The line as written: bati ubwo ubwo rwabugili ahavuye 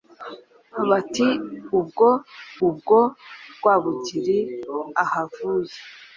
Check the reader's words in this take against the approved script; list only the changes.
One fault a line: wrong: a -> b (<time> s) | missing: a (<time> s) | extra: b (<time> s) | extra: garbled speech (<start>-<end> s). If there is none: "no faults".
no faults